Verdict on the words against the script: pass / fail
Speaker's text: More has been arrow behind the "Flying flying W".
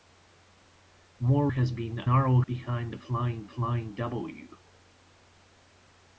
pass